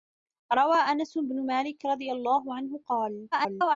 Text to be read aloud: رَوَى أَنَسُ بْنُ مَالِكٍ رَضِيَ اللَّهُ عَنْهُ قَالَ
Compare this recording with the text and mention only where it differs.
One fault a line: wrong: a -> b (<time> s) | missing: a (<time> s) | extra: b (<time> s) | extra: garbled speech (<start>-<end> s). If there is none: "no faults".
extra: garbled speech (3.3-3.8 s)